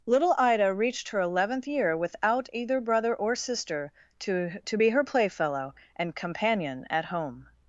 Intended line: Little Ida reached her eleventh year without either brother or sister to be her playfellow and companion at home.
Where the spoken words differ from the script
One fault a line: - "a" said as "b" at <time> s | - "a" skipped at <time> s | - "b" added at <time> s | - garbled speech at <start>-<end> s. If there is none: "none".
- "to" added at 4.7 s